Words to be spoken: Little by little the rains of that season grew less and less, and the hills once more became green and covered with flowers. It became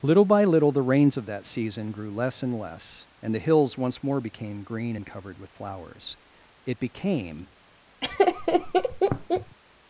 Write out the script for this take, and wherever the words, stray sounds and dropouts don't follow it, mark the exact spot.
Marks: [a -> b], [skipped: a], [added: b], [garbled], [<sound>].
Little by little the rains of that season grew less and less, and the hills once more became green and covered with flowers. It became [laugh]